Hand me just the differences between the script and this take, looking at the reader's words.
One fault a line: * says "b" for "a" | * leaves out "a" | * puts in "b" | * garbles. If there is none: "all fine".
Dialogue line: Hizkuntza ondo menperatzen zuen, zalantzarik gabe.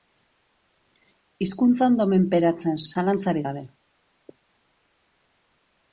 * leaves out "zuen"